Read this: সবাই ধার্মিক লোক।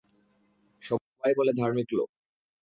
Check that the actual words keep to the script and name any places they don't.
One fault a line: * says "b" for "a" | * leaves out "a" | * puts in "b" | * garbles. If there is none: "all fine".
* puts in "বলে"